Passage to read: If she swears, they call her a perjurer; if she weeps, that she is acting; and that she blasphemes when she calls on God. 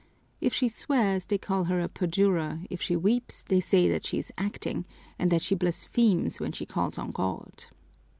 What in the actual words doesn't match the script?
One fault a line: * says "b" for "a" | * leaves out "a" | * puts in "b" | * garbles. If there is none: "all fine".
* puts in "they say"